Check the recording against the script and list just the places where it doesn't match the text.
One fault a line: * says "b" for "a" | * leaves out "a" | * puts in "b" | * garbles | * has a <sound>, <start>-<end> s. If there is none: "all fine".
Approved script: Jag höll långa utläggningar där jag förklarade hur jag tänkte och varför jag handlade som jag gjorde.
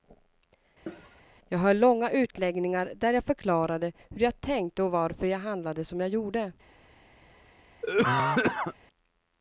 * has a cough, 0.9-1.2 s
* has a cough, 7.8-8.7 s